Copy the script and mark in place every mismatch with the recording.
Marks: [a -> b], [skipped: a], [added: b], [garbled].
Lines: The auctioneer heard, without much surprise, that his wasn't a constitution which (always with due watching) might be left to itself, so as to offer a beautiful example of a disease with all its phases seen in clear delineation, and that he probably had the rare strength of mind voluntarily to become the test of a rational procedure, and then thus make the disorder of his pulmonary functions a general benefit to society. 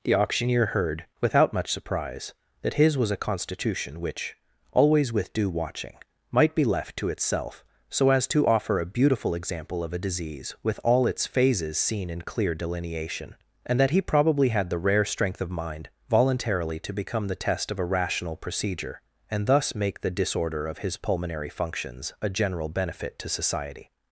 The auctioneer heard, without much surprise, that his [wasn't -> was] a constitution which (always with due watching) might be left to itself, so as to offer a beautiful example of a disease with all its phases seen in clear delineation, and that he probably had the rare strength of mind voluntarily to become the test of a rational procedure, and [skipped: then] thus make the disorder of his pulmonary functions a general benefit to society.